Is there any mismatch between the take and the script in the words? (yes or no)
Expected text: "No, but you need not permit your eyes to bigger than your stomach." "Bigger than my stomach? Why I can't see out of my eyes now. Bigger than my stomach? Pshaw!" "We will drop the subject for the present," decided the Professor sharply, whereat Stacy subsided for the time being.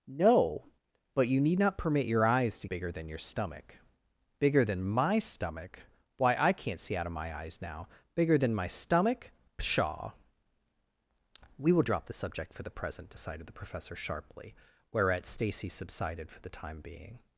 no